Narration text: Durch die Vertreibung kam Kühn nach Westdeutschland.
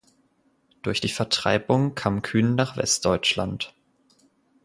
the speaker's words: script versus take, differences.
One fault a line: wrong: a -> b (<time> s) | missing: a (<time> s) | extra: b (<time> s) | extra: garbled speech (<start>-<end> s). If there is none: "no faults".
no faults